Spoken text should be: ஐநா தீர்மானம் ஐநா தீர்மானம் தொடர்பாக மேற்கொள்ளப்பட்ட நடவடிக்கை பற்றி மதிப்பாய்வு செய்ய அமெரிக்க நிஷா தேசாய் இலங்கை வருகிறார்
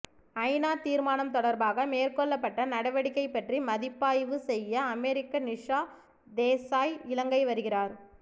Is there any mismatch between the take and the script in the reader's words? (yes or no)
yes